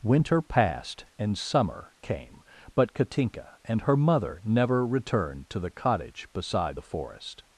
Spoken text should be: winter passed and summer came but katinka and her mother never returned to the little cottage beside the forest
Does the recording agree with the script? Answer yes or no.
no